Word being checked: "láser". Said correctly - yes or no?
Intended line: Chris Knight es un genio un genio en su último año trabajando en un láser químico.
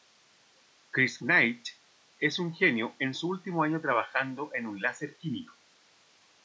yes